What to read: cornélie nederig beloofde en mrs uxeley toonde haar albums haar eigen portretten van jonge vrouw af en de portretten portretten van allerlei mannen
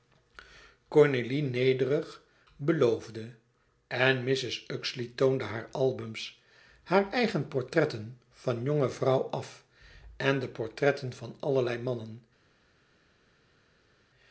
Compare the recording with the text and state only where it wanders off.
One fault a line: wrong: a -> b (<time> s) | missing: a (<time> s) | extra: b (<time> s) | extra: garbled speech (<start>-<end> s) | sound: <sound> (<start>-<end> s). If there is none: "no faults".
missing: portretten (11.1 s)